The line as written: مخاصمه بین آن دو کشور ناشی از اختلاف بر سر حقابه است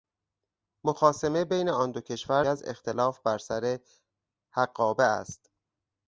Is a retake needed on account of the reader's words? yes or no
yes